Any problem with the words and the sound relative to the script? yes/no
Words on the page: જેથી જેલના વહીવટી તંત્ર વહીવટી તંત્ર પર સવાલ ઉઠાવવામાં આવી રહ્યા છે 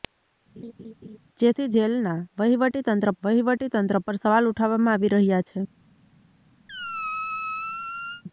yes